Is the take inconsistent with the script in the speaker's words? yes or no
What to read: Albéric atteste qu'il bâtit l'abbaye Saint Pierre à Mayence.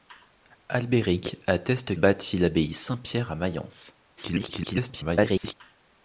yes